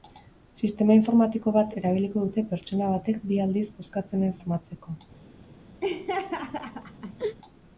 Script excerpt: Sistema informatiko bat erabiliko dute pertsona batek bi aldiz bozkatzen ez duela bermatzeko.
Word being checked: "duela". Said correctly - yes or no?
no